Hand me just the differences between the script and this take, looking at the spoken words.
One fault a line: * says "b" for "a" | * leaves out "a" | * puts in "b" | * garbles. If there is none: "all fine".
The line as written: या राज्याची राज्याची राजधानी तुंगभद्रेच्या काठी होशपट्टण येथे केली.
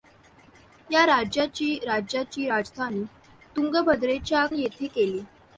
* leaves out "काठी होशपट्टण"